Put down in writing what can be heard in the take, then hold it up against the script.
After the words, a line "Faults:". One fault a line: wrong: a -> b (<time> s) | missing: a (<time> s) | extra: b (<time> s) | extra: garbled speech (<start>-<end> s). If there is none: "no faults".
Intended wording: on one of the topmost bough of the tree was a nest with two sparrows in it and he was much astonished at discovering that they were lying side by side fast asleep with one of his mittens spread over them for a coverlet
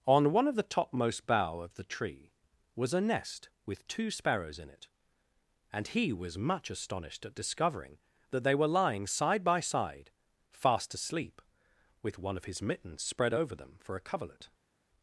on one of the topmost bough of the tree was a nest with two sparrows in it and he was much astonished at discovering that they were lying side by side fast asleep with one of his mittens spread over them for a coverlet
Faults:
no faults